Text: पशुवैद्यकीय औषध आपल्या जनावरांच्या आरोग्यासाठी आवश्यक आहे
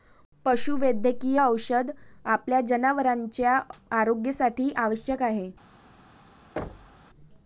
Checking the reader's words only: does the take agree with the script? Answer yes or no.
yes